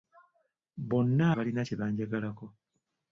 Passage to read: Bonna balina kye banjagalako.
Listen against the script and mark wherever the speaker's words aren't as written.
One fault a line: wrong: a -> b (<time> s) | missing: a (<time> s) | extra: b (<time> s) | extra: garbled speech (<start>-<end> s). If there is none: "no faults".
no faults